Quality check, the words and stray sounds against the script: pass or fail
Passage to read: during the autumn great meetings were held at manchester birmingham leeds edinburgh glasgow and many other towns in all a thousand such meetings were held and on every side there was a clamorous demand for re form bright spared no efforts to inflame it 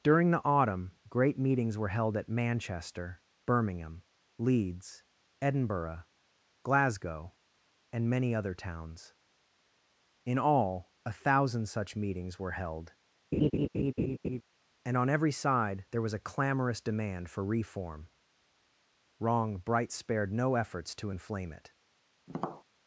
fail